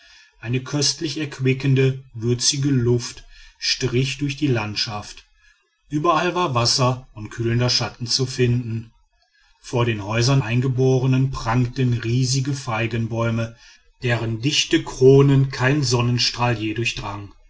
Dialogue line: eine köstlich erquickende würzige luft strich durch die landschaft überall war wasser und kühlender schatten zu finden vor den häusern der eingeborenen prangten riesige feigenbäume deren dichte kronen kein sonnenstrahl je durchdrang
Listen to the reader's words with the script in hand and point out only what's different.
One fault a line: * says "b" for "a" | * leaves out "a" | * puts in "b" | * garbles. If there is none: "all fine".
* leaves out "der"